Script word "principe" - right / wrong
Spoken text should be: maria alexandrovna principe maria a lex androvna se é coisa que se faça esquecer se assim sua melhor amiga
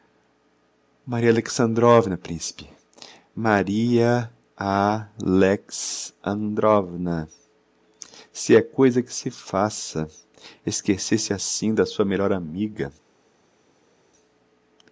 right